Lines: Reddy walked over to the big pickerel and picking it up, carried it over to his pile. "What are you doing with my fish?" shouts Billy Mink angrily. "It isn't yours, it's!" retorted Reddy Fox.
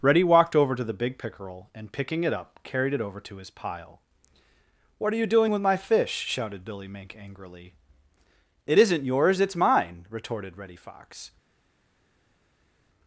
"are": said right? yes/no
yes